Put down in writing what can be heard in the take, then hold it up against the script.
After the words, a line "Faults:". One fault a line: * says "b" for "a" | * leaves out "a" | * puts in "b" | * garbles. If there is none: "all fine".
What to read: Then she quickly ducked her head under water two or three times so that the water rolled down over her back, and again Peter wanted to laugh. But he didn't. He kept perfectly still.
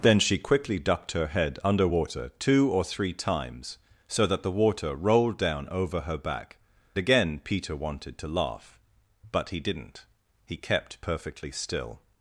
Then she quickly ducked her head under water two or three times so that the water rolled down over her back, again Peter wanted to laugh. But he didn't. He kept perfectly still.
Faults:
* leaves out "and"